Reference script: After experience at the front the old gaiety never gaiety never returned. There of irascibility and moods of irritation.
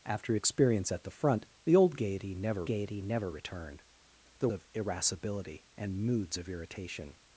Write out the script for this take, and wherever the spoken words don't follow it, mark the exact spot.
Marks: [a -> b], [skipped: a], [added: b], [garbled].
After experience at the front the old gaiety never gaiety never returned. There of irascibility and moods of irritation.